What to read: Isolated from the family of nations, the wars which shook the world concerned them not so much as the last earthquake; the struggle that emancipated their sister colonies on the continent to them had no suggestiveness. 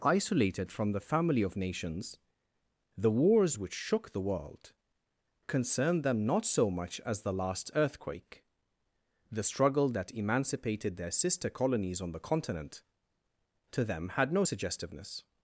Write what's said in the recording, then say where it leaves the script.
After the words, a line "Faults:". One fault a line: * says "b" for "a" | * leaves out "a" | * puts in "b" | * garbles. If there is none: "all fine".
Isolated from the family of nations, the wars which shook the world concerned them not so much as the last earthquake; the struggle that emancipated their sister colonies on the continent to them had no suggestiveness.
Faults:
all fine